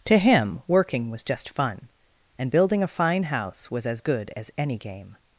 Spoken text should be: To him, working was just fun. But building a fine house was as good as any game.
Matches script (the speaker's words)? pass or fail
fail